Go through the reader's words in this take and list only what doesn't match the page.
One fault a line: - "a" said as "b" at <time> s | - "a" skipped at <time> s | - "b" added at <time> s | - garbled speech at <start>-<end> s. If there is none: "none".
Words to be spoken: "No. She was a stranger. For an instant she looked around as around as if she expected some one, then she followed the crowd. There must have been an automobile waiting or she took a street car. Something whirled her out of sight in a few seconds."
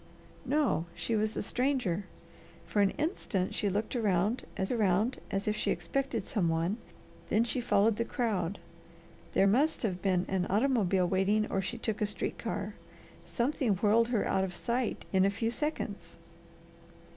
none